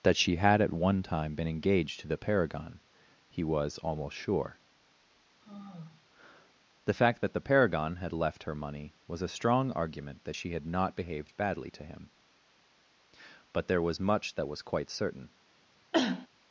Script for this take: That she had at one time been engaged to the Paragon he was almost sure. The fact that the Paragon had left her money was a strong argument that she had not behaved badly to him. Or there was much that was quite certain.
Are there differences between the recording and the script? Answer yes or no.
yes